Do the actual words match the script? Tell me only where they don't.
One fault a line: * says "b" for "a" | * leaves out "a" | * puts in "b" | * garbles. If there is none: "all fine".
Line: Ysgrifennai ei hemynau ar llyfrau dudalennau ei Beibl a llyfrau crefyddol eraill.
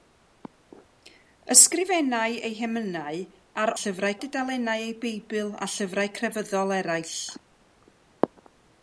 all fine